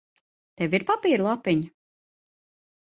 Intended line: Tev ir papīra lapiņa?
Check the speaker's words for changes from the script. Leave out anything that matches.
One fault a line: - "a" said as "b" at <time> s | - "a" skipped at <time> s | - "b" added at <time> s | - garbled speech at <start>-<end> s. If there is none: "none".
none